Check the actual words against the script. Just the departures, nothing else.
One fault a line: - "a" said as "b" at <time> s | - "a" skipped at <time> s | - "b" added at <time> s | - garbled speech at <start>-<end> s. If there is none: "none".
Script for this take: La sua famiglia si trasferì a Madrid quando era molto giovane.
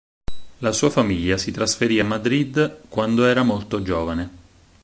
none